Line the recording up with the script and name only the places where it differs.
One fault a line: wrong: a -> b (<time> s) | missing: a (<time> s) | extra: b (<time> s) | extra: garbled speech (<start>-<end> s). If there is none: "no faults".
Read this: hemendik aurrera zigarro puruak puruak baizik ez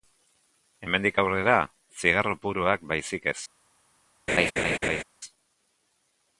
missing: puruak (2.9 s)